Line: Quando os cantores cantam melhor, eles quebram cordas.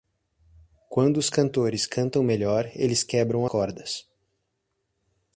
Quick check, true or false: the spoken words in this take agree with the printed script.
true